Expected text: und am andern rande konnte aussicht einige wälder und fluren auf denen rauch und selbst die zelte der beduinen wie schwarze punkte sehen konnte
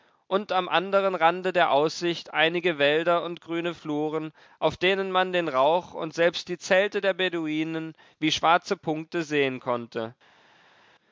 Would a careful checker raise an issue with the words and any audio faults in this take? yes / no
yes